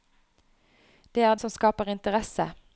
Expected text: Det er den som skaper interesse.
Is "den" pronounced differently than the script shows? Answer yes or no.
yes